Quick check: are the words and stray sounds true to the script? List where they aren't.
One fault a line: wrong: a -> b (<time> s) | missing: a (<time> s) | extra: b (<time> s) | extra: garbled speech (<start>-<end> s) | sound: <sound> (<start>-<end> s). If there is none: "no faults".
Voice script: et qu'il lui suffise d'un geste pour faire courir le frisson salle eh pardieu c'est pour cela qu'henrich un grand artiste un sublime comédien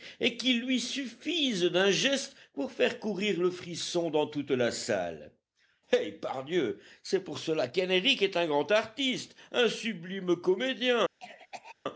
extra: dans toute la (4.1 s)
extra: est (8.2 s)
sound: cough (11.2-11.8 s)